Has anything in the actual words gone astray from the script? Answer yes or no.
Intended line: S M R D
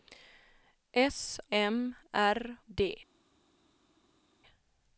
no